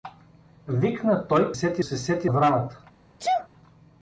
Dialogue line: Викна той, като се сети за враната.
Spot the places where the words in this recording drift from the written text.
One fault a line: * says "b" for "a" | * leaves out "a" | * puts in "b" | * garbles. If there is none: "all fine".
* says "сети" for "като"
* leaves out "за"